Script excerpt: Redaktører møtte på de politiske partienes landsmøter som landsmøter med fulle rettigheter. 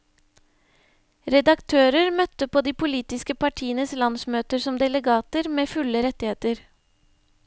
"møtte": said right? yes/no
yes